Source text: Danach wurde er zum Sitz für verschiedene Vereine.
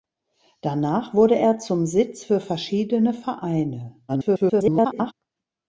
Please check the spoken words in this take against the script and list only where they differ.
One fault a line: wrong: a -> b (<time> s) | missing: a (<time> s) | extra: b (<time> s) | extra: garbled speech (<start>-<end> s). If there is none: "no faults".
extra: garbled speech (4.1-5.1 s)